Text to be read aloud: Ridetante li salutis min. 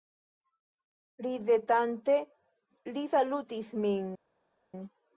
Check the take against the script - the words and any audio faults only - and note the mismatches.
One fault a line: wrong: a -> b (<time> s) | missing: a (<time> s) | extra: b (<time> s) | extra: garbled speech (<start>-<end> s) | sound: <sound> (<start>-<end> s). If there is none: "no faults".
no faults